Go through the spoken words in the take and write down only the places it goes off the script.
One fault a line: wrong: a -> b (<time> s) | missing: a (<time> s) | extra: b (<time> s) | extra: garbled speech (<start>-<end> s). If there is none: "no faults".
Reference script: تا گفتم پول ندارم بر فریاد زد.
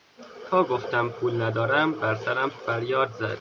extra: سرم (2.1 s)